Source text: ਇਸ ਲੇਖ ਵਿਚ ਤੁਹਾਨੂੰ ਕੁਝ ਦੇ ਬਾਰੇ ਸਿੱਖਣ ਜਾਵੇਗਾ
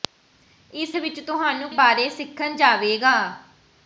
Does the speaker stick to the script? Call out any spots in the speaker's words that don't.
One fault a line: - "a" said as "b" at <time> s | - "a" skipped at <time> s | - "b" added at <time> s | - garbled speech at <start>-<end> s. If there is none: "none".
- "ਲੇਖ" skipped at 0.9 s
- "ਕੁਝ ਦੇ" skipped at 1.7 s